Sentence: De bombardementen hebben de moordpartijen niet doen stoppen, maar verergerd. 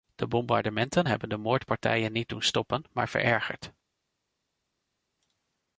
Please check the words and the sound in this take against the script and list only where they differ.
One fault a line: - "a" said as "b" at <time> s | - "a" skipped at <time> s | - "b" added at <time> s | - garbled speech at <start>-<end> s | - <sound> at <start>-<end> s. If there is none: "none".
none